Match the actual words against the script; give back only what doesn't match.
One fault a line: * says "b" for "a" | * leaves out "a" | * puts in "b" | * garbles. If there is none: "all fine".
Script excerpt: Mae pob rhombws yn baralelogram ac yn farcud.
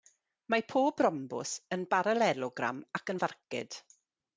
all fine